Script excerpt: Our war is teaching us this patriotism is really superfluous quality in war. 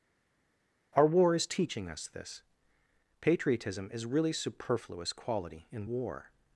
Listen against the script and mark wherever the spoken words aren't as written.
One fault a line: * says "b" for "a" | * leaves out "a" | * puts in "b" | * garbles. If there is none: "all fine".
all fine